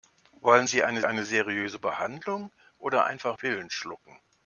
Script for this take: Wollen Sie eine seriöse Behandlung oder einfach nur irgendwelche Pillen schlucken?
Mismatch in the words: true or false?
true